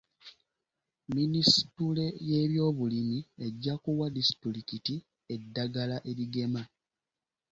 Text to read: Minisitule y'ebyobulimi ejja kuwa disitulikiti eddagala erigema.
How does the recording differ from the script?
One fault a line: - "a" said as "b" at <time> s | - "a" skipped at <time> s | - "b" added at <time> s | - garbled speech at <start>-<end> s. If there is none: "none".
none